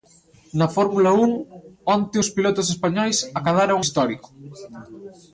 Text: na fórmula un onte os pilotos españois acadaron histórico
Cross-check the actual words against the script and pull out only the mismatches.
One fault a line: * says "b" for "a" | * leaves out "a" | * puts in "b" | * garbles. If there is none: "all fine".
all fine